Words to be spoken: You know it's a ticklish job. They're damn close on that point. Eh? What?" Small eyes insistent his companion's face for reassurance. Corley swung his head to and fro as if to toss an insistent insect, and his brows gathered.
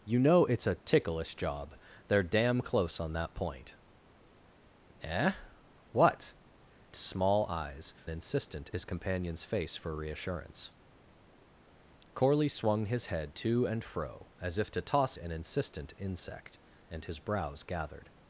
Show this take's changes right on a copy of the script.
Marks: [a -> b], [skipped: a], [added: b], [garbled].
You know it's a ticklish job. They're damn close on that point. Eh? What?" Small eyes insistent his companion's face for reassurance. Corley swung his head to and fro as if to toss an insistent insect, and his brows gathered.